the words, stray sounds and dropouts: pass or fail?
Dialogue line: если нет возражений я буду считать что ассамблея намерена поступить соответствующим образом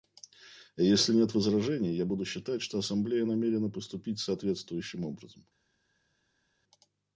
pass